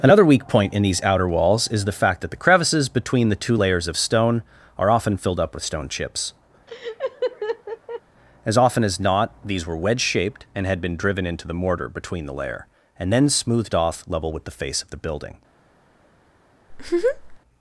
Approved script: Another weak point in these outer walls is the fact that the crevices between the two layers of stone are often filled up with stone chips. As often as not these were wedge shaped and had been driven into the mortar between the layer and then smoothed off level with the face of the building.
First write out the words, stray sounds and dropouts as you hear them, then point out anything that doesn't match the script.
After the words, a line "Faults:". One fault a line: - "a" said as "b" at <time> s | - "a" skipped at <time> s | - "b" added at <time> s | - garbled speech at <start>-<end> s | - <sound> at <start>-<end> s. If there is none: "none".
Another weak point in these outer walls is the fact that the crevices between the two layers of stone are often filled up with stone chips. As often as not these were wedge shaped and had been driven into the mortar between the layer and then smoothed off level with the face of the building.
Faults:
- laugh at 6.7-8.0 s
- laugh at 16.7-17.4 s